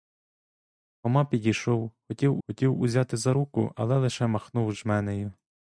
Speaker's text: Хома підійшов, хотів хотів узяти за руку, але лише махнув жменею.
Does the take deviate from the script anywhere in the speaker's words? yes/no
no